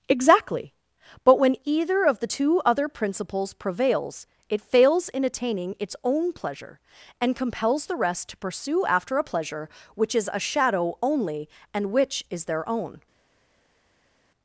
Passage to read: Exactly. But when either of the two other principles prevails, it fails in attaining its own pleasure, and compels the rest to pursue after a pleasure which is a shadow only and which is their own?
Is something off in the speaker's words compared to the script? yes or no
no